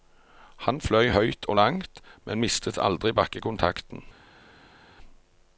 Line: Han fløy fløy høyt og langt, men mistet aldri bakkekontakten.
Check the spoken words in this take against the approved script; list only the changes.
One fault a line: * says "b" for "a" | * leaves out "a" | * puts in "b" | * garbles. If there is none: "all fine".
* leaves out "fløy"